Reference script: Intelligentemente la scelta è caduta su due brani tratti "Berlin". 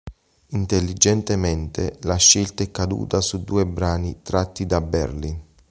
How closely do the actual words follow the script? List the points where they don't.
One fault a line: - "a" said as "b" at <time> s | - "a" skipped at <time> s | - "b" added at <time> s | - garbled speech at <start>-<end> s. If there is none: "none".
- "da" added at 4.7 s